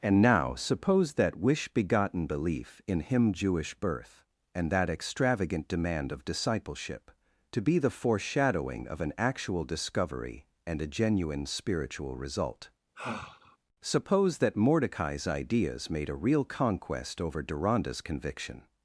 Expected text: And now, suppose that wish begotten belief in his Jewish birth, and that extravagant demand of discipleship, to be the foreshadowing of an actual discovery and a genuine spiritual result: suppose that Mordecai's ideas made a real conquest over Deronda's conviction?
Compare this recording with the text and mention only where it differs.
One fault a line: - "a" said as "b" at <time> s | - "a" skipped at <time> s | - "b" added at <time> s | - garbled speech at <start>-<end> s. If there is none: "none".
- "his" said as "him" at 3.0 s